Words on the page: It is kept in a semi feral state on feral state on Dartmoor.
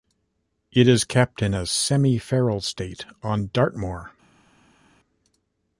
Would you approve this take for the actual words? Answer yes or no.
no